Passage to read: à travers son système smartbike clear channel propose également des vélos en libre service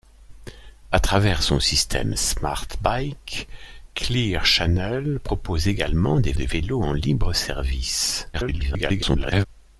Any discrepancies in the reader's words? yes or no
yes